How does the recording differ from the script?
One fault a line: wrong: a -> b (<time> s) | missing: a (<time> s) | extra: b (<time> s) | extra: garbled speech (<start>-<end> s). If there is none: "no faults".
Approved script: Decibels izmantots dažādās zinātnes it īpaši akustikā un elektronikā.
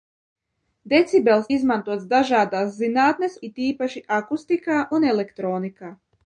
no faults